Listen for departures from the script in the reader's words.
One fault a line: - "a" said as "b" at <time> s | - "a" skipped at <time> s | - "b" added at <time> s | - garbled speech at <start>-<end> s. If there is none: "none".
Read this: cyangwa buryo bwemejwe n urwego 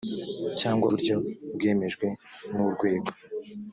none